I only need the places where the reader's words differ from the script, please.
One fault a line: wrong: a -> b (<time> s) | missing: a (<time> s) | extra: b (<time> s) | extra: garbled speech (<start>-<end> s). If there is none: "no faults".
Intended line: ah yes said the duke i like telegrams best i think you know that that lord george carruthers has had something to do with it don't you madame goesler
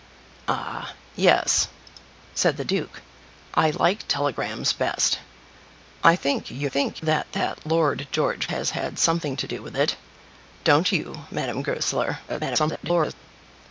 wrong: know -> think (6.7 s)
missing: carruthers (8.5 s)
extra: garbled speech (12.3-13.1 s)